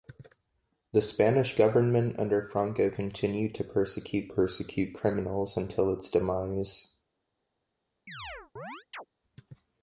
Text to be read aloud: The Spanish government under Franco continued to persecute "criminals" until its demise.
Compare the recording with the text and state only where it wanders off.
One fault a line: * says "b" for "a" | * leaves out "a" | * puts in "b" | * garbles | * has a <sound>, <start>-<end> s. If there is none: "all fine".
* puts in "persecute"
* has a chirp, 8.1-9.1 s